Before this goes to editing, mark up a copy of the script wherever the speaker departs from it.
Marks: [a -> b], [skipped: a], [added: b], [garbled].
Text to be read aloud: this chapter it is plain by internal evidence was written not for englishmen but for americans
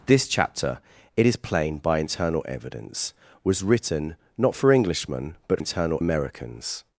this chapter it is plain by internal evidence was written not for englishmen but [for -> internal] americans